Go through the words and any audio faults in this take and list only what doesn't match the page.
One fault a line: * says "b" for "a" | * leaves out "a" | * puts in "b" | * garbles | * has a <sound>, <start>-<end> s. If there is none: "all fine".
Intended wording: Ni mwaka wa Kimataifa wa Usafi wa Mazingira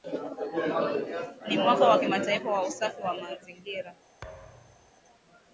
* has a thud, 4.2-4.9 s